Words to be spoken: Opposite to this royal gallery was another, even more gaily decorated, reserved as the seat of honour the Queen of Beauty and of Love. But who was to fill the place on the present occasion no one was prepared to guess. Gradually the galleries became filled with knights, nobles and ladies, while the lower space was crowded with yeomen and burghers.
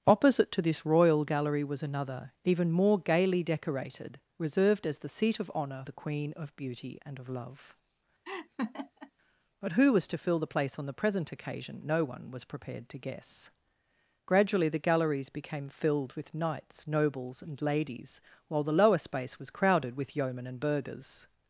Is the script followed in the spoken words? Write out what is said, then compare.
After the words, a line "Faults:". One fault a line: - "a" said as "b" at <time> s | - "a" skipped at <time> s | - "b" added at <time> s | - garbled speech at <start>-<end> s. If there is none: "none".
Opposite to this royal gallery was another, even more gaily decorated, reserved as the seat of honour the Queen of Beauty and of Love. But who was to fill the place on the present occasion no one was prepared to guess. Gradually the galleries became filled with knights, nobles and ladies, while the lower space was crowded with yeomen and burghers.
Faults:
none